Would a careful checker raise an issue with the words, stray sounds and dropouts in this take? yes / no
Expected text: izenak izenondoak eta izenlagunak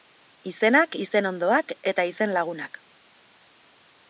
no